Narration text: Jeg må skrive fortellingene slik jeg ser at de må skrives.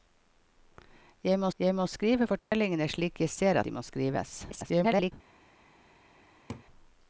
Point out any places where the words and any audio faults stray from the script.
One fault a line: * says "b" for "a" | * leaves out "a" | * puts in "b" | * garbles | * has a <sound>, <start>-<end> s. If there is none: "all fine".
* puts in "jeg må"
* has a dropout, 2.4-2.5 s
* leaves out "at"
* garbles
* has a laugh, 6.5-6.7 s